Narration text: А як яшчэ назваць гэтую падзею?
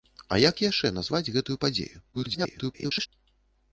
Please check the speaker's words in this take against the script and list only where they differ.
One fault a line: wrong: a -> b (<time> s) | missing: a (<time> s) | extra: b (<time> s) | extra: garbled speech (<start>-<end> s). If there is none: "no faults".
extra: garbled speech (2.1-3.1 s)